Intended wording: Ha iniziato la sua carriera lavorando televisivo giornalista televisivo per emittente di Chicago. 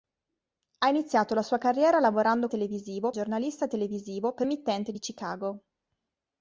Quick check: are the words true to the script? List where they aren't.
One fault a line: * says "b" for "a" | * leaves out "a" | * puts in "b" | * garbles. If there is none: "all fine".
all fine